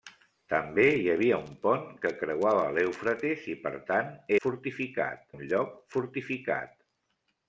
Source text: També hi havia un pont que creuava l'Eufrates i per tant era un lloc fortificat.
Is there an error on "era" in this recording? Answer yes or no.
yes